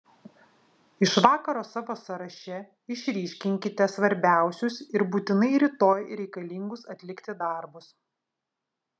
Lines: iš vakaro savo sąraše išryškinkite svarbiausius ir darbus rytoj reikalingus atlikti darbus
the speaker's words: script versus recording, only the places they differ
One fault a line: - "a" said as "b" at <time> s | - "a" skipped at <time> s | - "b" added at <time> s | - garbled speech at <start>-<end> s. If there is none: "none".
- "darbus" said as "būtinai" at 5.2 s